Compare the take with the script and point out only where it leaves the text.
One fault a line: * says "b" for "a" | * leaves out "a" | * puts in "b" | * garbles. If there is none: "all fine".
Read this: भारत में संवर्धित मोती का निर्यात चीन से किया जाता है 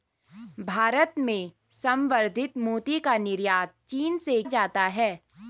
* leaves out "किया"